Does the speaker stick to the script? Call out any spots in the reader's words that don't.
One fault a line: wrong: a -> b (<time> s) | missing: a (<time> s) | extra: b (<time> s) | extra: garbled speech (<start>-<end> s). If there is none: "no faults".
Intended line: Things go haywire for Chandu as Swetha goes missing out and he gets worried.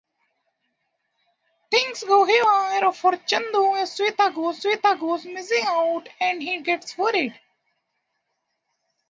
extra: Swetha goes (4.6 s)